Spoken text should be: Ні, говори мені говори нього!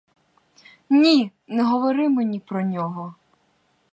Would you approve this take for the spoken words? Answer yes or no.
no